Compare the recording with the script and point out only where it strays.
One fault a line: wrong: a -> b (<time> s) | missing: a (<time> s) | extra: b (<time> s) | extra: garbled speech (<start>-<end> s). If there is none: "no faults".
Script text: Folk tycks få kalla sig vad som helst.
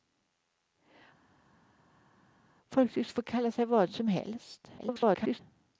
extra: garbled speech (4.8-5.4 s)